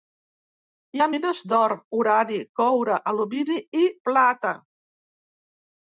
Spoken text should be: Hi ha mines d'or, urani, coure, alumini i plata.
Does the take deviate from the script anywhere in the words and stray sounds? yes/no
no